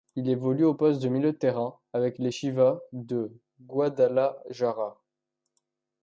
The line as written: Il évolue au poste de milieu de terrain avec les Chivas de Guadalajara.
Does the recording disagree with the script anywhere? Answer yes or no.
no